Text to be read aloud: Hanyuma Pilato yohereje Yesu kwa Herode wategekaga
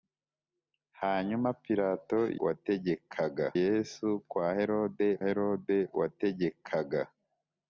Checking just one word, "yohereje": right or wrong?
wrong